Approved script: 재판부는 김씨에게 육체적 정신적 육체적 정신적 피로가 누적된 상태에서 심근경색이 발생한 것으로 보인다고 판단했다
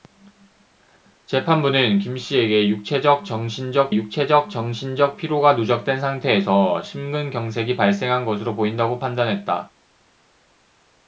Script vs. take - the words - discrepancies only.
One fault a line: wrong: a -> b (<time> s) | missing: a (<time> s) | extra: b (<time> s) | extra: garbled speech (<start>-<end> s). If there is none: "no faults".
no faults